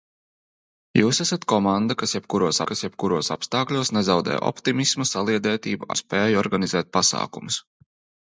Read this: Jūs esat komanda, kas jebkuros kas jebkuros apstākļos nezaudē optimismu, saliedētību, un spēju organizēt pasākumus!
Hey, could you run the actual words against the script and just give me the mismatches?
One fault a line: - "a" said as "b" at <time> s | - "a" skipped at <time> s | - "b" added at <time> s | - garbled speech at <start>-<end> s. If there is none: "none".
none